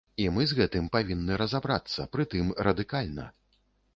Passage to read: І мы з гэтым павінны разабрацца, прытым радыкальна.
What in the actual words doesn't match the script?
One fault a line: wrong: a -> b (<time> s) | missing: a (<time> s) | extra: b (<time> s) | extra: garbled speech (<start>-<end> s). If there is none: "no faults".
no faults